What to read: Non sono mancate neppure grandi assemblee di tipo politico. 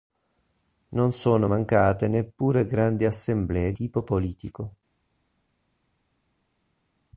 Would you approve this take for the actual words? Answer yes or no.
no